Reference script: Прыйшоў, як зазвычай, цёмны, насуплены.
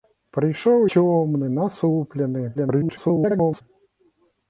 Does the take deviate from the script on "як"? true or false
true